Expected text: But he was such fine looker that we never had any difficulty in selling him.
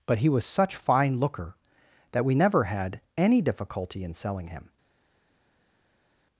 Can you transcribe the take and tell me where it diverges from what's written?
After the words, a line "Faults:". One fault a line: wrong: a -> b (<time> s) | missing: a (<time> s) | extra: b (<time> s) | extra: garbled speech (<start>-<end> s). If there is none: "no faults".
But he was such fine looker that we never had any difficulty in selling him.
Faults:
no faults